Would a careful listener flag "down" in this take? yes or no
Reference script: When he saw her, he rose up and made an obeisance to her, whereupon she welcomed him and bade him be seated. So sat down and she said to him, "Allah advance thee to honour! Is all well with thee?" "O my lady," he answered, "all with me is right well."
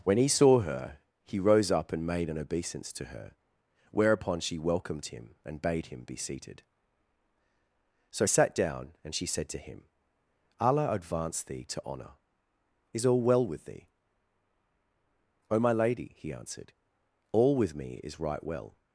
no